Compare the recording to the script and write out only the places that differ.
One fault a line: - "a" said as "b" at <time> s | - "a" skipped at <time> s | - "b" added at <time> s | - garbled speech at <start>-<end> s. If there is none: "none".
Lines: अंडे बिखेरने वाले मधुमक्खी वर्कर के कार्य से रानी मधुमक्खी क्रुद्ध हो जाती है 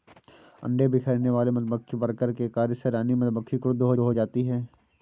- "हो" added at 4.0 s